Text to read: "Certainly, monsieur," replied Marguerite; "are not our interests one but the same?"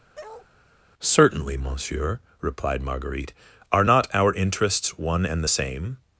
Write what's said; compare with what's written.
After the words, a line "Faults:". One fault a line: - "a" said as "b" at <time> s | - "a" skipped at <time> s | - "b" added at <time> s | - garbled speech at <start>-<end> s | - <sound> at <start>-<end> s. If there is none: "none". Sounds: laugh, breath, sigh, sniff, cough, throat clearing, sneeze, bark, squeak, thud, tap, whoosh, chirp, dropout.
"Certainly, monsieur," replied Marguerite; "are not our interests one and the same?"
Faults:
- bark at 0.1-0.5 s
- "but" said as "and" at 5.3 s